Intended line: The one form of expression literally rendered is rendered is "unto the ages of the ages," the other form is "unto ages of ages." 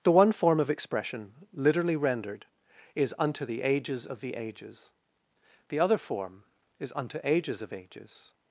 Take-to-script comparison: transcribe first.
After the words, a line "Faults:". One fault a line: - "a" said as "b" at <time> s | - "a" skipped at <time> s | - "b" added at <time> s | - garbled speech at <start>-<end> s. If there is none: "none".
The one form of expression literally rendered is "unto the ages of the ages," the other form is "unto ages of ages."
Faults:
- "rendered is" skipped at 3.1 s